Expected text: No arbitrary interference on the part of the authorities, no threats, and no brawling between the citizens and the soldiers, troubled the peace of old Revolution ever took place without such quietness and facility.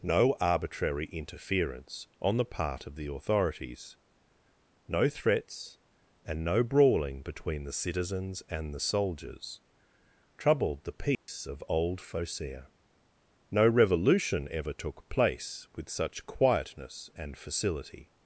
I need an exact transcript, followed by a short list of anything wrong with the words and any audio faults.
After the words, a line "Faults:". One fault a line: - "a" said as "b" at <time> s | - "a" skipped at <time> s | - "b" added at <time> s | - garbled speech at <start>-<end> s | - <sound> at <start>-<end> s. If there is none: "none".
No arbitrary interference on the part of the authorities, no threats, and no brawling between the citizens and the soldiers, troubled the peace of old Phocea; no revolution ever took place with such quietness and facility.
Faults:
- dropout at 11.1-11.3 s
- "Phocea no" added at 12.0 s
- "without" said as "with" at 15.7 s